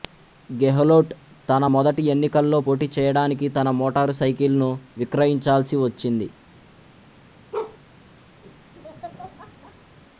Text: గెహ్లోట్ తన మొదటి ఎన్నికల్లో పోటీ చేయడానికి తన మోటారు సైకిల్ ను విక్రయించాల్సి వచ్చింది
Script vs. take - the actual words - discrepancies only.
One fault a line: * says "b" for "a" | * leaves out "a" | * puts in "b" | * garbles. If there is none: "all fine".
all fine